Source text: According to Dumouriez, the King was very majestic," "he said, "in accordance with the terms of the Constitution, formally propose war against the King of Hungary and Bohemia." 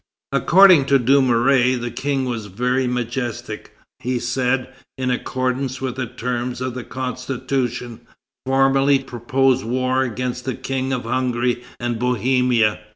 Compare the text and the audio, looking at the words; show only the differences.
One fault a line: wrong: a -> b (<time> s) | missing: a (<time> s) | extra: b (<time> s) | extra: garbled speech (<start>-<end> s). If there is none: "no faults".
no faults